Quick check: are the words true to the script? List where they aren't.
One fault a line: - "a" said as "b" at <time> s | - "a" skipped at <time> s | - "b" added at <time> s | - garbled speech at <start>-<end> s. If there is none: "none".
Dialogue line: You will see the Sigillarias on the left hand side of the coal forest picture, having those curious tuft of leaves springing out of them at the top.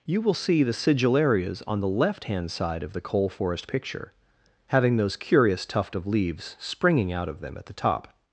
none